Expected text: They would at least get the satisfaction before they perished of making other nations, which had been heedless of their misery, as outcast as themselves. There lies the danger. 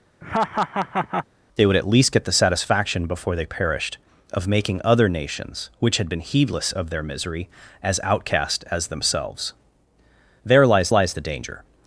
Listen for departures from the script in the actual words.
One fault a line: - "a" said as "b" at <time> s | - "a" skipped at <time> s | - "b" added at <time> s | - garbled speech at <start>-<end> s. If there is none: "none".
- "lies" added at 10.9 s